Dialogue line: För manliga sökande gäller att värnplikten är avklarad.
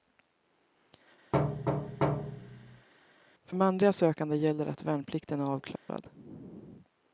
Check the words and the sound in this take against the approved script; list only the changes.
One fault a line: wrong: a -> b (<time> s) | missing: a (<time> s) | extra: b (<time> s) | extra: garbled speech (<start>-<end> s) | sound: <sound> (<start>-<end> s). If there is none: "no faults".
sound: thud (1.3-2.9 s)
sound: dropout (5.8-5.9 s)